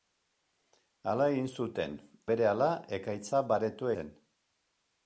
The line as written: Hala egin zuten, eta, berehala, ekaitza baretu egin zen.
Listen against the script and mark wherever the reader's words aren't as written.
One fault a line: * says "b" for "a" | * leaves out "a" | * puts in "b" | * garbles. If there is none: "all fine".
* leaves out "eta"
* leaves out "egin"